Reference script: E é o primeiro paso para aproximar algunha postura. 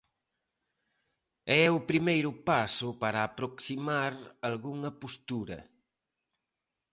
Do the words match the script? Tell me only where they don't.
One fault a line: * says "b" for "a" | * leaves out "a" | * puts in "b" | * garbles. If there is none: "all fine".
all fine